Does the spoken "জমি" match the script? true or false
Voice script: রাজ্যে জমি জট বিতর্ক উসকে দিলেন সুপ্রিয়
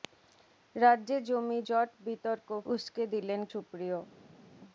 true